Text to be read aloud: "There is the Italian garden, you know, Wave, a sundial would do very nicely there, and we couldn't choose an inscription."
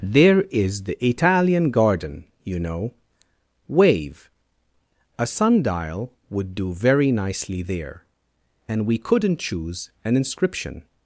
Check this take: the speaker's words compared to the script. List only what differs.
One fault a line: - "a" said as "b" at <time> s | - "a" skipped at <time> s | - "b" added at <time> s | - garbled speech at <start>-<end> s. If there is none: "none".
none